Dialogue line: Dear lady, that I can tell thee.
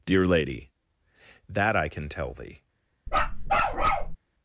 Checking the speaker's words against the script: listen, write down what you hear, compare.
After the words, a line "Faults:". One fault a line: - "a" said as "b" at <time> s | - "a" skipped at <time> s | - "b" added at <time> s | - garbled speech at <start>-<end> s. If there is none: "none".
Dear lady, that I can tell thee.
Faults:
none